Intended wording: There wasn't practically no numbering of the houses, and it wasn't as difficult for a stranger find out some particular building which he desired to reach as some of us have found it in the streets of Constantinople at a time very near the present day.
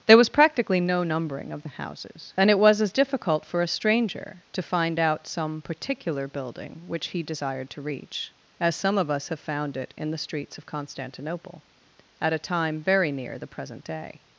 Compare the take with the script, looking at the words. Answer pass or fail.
fail